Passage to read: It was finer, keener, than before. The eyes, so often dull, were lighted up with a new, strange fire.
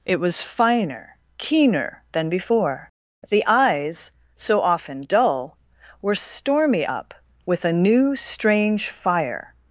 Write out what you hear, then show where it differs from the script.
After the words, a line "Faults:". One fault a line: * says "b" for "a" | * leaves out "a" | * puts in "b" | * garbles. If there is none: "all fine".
It was finer, keener, than before. The eyes, so often dull, were stormy up with a new, strange fire.
Faults:
* says "stormy" for "lighted"